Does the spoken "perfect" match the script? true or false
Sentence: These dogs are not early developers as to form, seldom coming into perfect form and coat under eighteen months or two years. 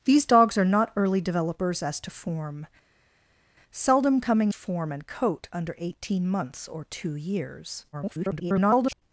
false